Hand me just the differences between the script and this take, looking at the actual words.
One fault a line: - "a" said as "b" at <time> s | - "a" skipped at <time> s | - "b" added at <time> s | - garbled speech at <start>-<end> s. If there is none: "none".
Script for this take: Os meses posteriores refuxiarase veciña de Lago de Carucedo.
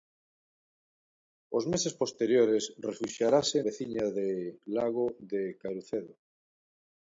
none